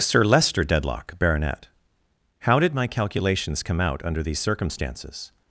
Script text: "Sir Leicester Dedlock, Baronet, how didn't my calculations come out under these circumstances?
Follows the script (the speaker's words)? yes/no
no